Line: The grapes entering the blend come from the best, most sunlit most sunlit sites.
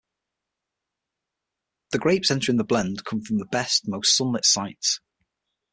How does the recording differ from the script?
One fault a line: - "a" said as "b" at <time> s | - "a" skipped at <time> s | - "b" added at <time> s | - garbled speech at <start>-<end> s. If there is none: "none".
- "most sunlit" skipped at 4.4 s